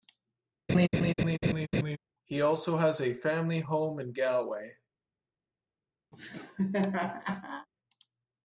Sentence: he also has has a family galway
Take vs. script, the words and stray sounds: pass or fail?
fail